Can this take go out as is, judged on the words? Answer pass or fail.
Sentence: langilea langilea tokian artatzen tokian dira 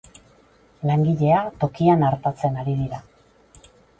fail